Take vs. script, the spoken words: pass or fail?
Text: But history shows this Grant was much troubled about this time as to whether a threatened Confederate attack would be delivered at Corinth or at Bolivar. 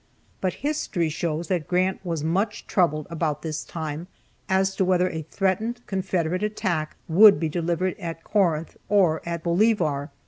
fail